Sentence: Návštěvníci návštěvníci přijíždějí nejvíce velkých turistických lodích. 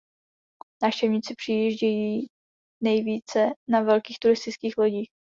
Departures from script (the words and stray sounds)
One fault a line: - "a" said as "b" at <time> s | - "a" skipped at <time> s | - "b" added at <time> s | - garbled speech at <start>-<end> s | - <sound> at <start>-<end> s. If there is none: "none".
- "návštěvníci" skipped at 1.4 s
- "na" added at 3.7 s